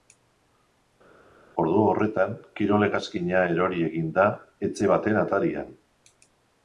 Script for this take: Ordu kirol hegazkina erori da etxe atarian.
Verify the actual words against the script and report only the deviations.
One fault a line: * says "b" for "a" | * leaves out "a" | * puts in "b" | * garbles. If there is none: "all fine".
* puts in "horretan"
* puts in "egin"
* puts in "baten"